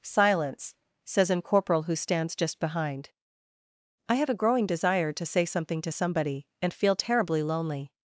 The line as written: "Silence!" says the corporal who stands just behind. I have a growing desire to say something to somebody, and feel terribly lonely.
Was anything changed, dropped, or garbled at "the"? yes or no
yes